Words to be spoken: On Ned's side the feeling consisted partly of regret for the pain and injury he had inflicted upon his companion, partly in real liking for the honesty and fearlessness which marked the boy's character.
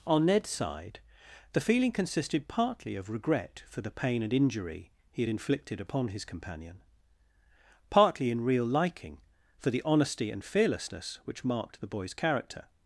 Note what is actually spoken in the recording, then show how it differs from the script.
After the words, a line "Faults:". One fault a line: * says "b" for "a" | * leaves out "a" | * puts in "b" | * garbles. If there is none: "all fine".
On Ned's side the feeling consisted partly of regret for the pain and injury he had inflicted upon his companion, partly in real liking for the honesty and fearlessness which marked the boy's character.
Faults:
all fine